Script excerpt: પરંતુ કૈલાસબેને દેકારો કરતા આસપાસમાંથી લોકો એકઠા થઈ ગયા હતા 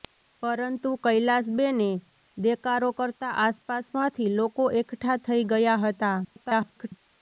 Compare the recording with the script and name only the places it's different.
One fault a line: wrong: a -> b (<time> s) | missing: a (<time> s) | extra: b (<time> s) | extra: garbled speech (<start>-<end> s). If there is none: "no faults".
extra: garbled speech (6.2-6.9 s)